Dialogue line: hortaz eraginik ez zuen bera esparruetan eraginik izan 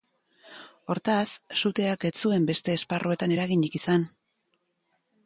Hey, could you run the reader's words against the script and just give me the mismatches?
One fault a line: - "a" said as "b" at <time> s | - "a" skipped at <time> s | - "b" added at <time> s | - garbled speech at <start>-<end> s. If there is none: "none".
- "eraginik" said as "suteak" at 1.6 s
- "bera" said as "beste" at 2.5 s